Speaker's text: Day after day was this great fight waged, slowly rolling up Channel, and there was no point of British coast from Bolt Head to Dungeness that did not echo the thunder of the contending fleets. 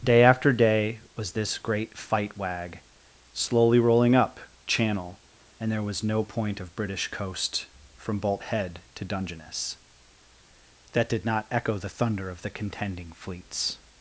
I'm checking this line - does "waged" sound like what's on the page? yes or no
no